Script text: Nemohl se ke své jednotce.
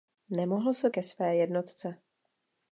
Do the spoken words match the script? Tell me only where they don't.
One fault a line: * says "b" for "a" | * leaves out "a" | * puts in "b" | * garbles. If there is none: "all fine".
all fine